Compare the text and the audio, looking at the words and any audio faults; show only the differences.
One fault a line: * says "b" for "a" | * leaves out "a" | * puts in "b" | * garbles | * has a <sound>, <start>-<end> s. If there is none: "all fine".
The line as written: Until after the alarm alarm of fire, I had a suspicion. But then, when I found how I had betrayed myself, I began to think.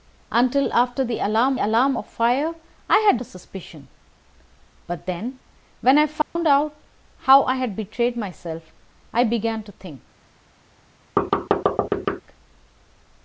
* has a dropout, 6.2-6.4 s
* has a thud, 11.2-12.2 s